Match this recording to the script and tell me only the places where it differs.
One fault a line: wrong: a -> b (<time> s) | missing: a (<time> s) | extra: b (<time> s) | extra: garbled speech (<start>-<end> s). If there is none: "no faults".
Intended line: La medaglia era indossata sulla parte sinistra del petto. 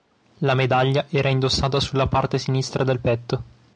no faults